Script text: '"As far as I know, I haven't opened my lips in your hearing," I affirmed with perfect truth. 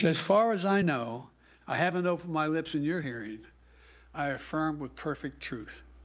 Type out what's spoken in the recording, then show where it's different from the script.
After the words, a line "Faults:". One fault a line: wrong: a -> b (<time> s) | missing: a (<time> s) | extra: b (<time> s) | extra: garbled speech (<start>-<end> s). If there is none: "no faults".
'"As far as I know, I haven't opened my lips in your hearing," I affirm with perfect truth.
Faults:
wrong: affirmed -> affirm (4.3 s)